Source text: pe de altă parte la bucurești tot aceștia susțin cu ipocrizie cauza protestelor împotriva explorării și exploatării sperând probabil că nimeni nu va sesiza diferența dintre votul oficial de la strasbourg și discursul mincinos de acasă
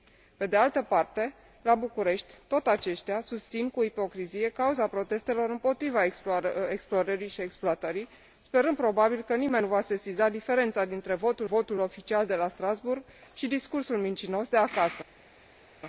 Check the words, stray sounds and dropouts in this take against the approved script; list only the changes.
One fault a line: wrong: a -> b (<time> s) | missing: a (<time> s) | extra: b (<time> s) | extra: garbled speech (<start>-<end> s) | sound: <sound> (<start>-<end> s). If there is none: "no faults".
extra: votul (11.4 s)